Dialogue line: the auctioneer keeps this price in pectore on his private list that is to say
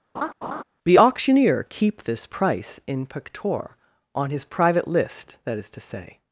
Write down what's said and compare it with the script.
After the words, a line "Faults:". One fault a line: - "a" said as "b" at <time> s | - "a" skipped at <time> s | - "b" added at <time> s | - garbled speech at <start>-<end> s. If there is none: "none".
the auctioneer keep this price in pectore on his private list that is to say
Faults:
- "keeps" said as "keep" at 1.7 s